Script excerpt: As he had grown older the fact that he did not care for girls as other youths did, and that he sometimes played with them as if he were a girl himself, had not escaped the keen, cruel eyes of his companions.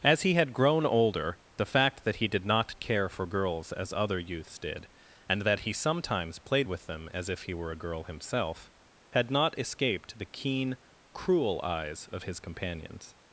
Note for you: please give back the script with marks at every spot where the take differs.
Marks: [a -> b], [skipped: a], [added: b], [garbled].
As he had grown older the fact that he did not care for girls as other youths did, and that he sometimes played with them as if he were a girl himself, had not escaped the keen, cruel eyes of his companions.